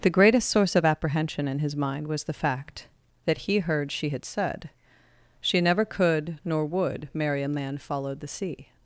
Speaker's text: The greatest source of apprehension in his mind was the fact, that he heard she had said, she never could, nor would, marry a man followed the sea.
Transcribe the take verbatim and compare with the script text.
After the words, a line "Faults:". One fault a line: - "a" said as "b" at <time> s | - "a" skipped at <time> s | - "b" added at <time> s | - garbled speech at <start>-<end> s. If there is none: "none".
The greatest source of apprehension in his mind was the fact, that he heard she had said, she never could, nor would, marry a man followed the sea.
Faults:
none